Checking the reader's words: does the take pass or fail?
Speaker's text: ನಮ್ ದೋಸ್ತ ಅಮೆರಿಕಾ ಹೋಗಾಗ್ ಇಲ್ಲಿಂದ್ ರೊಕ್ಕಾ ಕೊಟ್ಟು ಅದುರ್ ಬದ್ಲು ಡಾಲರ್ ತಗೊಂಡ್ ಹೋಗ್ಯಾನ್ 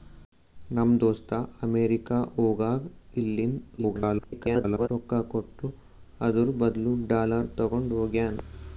fail